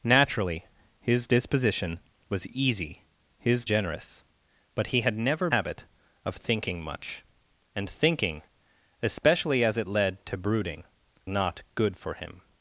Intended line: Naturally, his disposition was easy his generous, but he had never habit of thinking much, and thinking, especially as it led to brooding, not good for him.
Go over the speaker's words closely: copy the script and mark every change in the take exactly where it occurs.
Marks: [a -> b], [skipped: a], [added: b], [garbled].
Naturally, his disposition was easy his generous, but he had never habit of thinking much, and thinking, especially as it led to brooding, not good for him.